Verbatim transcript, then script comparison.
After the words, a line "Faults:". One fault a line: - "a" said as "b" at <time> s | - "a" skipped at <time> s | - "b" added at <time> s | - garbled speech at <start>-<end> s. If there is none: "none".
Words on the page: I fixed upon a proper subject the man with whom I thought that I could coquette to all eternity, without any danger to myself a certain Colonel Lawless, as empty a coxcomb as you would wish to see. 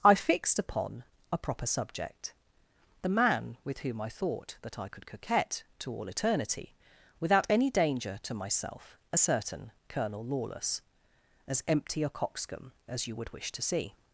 I fixed upon a proper subject the man with whom I thought that I could coquette to all eternity, without any danger to myself a certain Colonel Lawless, as empty a coxcomb as you would wish to see.
Faults:
none